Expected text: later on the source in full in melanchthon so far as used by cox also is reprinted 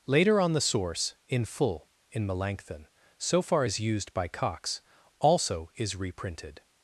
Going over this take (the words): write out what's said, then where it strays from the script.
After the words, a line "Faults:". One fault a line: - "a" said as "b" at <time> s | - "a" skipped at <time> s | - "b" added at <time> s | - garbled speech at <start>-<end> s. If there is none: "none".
later on the source in full in melanchthon so far as used by cox also is reprinted
Faults:
none